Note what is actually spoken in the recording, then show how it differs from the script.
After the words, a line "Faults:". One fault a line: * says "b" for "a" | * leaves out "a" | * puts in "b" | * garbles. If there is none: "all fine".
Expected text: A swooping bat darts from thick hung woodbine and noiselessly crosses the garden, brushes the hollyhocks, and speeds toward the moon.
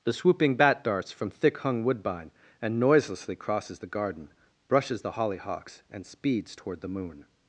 The swooping bat darts from thick hung woodbine and noiselessly crosses the garden, brushes the hollyhocks, and speeds toward the moon.
Faults:
* says "The" for "A"